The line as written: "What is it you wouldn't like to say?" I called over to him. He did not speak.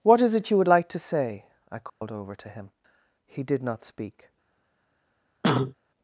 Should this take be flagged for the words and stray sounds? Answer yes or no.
yes